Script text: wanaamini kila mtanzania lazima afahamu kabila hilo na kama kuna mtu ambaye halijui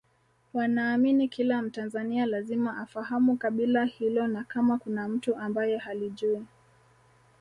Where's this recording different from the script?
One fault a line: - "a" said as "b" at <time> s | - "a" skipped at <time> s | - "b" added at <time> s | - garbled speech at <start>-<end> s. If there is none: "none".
none